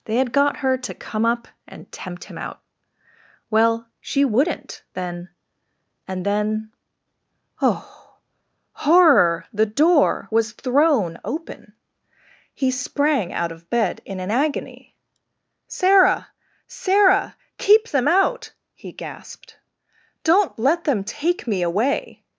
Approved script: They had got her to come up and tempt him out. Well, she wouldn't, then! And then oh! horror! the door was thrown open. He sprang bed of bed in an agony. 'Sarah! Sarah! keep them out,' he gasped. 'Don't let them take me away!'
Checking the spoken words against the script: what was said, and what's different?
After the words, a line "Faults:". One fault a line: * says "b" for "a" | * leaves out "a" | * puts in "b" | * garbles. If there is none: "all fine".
They had got her to come up and tempt him out. Well, she wouldn't, then! And then oh! horror! the door was thrown open. He sprang out of bed in an agony. 'Sarah! Sarah! keep them out,' he gasped. 'Don't let them take me away!'
Faults:
* says "out" for "bed"